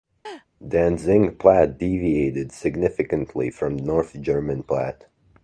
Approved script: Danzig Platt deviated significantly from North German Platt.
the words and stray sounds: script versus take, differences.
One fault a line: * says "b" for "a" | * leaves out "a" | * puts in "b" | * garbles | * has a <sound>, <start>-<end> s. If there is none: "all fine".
* has a laugh, 0.2-0.5 s